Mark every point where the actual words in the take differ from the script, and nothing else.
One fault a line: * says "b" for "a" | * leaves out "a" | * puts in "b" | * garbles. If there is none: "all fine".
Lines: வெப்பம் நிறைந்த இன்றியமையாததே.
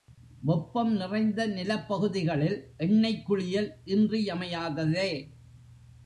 * puts in "நிலப்பகுதிகளில் எண்ணெய்க் குளியல்"